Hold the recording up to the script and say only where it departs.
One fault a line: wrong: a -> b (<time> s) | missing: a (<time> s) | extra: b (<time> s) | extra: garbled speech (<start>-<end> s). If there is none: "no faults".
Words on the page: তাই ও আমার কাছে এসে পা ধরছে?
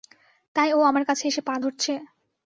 no faults